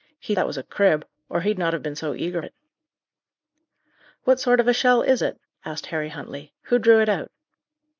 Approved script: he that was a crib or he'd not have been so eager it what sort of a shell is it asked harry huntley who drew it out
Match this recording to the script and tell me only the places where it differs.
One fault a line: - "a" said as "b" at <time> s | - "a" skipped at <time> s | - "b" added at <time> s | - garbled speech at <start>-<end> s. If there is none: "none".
none